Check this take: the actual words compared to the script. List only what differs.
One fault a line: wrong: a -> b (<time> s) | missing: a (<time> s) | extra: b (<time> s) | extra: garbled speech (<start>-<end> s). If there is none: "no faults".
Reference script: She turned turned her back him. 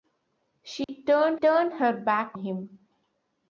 no faults